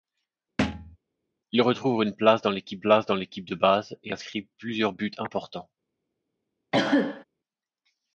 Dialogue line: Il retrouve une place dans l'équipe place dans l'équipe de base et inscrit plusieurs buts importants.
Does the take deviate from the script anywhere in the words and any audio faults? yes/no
yes